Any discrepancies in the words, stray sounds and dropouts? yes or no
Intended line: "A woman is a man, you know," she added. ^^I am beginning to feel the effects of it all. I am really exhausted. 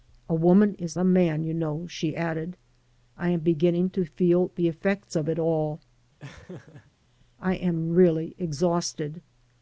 yes